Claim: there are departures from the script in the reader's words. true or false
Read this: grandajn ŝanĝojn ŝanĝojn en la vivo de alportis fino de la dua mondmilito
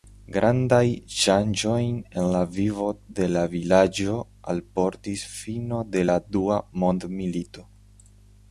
true